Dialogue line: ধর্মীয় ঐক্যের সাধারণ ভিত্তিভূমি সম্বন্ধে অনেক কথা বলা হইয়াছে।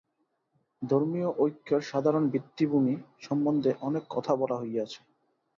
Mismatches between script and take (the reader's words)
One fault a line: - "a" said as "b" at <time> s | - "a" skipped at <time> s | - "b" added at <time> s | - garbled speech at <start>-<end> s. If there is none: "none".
none